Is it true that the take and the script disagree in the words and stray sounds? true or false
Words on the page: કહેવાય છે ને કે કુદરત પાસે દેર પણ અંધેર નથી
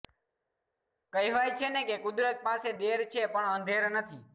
true